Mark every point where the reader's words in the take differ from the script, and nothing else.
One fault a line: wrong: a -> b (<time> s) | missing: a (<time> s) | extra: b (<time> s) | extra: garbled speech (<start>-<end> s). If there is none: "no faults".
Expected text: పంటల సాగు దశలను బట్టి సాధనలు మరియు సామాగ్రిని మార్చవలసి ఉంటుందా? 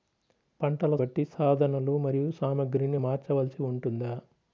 missing: సాగు దశలను (0.9 s)